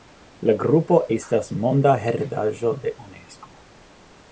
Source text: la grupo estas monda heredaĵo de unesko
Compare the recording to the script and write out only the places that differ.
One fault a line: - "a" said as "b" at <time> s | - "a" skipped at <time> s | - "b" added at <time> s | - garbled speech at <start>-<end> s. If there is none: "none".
none